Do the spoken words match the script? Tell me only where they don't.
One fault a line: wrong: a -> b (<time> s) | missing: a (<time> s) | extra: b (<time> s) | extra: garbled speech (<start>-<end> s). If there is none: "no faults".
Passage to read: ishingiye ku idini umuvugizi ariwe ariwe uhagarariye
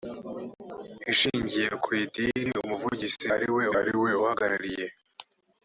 no faults